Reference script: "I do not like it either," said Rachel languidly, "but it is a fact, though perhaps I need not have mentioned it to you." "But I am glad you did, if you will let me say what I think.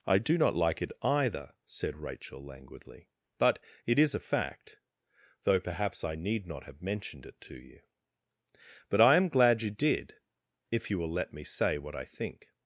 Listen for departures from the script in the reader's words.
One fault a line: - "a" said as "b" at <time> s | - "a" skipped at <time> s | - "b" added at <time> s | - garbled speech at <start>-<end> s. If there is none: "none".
none